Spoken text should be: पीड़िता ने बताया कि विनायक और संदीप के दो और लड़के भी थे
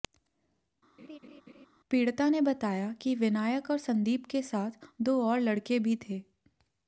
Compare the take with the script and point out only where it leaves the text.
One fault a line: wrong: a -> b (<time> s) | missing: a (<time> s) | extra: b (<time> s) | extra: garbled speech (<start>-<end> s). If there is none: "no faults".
extra: साथ (4.4 s)